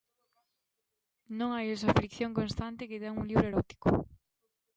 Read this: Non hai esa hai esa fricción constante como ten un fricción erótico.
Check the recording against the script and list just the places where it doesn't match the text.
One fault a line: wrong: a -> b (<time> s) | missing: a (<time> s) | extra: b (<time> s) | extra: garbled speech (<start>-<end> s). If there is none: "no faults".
missing: hai esa (1.9 s)
wrong: como -> que (2.9 s)
wrong: fricción -> libro (3.3 s)